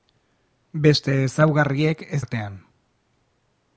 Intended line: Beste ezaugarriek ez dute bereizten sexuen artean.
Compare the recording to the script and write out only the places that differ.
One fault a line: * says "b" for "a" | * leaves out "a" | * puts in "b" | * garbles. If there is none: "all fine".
* leaves out "dute bereizten sexuen"